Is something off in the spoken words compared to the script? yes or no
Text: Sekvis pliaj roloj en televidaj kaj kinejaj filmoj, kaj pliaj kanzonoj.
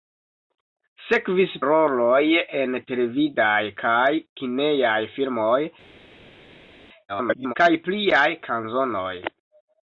yes